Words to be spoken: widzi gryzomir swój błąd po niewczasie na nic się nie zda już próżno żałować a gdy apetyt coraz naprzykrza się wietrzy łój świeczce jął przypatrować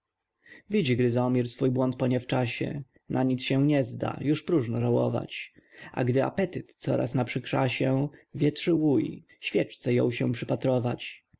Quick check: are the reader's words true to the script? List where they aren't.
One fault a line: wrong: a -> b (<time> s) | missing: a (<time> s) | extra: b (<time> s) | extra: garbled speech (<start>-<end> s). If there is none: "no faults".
extra: się (10.1 s)